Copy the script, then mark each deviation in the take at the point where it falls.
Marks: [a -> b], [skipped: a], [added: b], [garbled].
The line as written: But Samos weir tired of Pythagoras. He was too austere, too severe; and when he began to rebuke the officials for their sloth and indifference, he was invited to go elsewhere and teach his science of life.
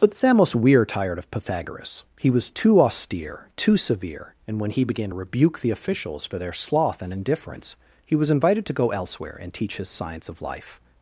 But Samos weir tired of Pythagoras. He was too austere, too severe; and when he began to rebuke the officials for their sloth and indifference, he was invited to go elsewhere and teach his science of life.